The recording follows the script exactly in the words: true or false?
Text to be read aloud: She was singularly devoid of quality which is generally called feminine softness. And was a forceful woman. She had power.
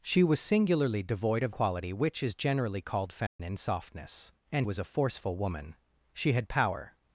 true